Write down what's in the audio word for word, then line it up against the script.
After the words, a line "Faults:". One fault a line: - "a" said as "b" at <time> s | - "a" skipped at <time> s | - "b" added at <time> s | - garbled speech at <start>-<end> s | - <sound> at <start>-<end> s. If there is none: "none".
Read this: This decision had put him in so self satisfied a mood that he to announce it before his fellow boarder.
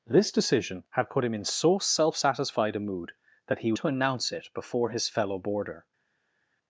This decision had put him in so self satisfied a mood that he to announce it before his fellow boarder.
Faults:
none